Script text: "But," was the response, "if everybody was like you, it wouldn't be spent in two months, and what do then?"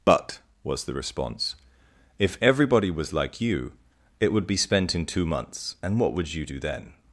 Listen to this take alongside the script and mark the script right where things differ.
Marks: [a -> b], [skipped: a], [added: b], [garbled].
"But," was the response, "if everybody was like you, it [wouldn't -> would] be spent in two months, and what [added: would you] do then?"